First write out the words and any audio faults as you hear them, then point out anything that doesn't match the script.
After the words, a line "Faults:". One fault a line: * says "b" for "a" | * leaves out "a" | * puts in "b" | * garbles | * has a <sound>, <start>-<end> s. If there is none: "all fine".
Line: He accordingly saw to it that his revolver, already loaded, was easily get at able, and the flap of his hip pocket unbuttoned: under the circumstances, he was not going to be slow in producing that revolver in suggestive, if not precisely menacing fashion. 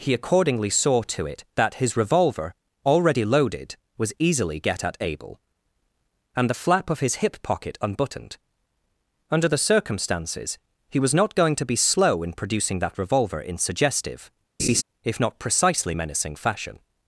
He accordingly saw to it that his revolver, already loaded, was easily get at able, and the flap of his hip pocket unbuttoned: under the circumstances, he was not going to be slow in producing that revolver in suggestive, if not precisely menacing fashion.
Faults:
* has a laugh, 14.6-14.8 s